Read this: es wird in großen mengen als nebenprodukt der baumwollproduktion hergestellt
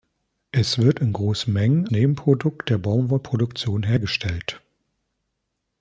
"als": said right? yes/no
no